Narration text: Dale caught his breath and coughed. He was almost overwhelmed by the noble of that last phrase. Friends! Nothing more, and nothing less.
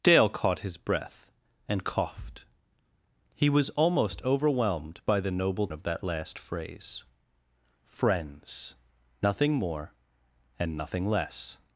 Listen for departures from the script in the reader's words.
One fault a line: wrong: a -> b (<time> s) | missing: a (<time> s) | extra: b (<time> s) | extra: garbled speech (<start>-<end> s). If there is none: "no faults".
no faults